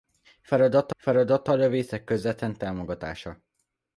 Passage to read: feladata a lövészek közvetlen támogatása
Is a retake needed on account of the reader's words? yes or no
yes